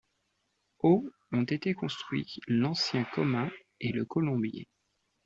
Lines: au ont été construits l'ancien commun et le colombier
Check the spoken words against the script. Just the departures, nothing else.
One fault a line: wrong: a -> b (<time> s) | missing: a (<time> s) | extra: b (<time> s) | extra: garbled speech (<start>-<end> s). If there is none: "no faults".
no faults